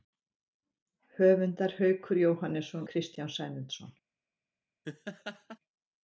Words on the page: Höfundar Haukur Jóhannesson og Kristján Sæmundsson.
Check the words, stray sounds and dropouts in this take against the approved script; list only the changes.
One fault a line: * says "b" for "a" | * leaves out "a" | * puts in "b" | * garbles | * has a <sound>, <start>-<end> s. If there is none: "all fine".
* leaves out "og"
* has a laugh, 4.8-5.6 s